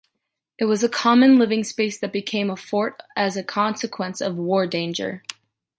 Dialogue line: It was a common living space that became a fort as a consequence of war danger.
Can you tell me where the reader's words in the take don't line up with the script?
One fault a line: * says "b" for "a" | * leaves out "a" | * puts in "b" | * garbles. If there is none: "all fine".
all fine